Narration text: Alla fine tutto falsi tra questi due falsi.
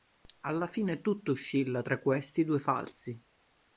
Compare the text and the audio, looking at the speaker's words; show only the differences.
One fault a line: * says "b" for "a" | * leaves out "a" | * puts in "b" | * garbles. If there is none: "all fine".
* says "oscilla" for "falsi"